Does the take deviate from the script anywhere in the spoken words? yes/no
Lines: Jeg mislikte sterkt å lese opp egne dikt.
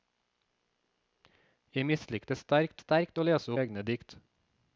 yes